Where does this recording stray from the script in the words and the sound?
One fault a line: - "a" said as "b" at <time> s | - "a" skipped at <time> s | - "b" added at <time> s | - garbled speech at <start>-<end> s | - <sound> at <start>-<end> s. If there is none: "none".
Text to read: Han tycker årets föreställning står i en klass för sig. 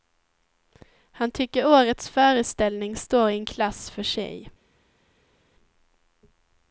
none